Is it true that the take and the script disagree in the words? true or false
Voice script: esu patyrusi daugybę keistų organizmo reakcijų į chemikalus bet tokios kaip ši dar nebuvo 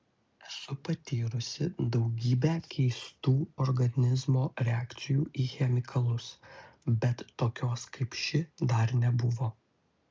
false